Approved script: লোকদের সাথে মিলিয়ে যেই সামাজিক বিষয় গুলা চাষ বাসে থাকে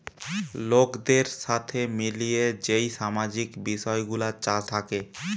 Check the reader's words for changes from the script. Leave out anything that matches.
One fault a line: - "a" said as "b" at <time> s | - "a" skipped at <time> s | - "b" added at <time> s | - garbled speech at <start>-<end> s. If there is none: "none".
- "বাসে" skipped at 4.6 s